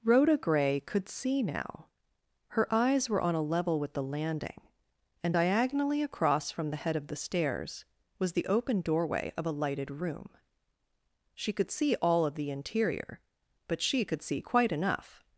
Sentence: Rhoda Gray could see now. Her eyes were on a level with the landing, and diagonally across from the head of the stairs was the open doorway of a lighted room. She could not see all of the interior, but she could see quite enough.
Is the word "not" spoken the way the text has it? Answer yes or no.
no